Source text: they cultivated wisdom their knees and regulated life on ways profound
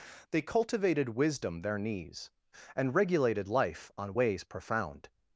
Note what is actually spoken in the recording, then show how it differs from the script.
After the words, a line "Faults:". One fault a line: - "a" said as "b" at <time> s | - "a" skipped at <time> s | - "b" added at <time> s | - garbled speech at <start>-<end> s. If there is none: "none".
they cultivated wisdom their knees and regulated life on ways profound
Faults:
none